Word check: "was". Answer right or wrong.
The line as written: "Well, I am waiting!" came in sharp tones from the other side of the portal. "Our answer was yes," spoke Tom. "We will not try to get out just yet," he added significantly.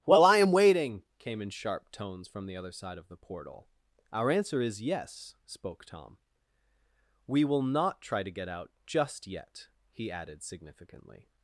wrong